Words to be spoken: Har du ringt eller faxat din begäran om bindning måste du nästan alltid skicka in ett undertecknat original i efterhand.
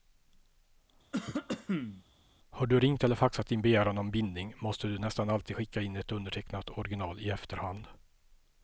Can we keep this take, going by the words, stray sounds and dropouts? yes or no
no